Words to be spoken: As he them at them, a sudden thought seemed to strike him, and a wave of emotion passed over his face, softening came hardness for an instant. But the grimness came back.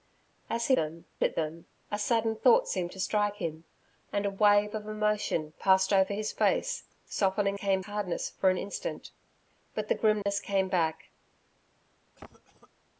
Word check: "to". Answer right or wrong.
right